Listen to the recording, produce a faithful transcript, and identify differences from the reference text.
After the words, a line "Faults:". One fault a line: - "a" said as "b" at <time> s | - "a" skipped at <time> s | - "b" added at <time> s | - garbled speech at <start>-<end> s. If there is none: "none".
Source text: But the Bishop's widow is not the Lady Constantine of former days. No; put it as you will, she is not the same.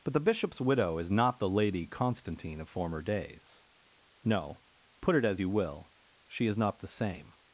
But the Bishop's widow is not the Lady Constantine of former days. No; put it as you will, she is not the same.
Faults:
none